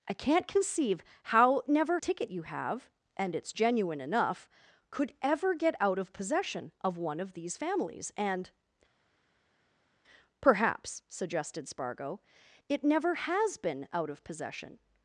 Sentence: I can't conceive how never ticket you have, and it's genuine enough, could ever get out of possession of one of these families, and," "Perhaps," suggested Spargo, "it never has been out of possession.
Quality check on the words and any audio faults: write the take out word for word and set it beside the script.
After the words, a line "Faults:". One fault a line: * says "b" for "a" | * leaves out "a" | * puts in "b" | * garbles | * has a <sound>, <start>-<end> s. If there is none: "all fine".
I can't conceive how never ticket you have, and it's genuine enough, could ever get out of possession of one of these families, and," "Perhaps," suggested Spargo, "it never has been out of possession.
Faults:
all fine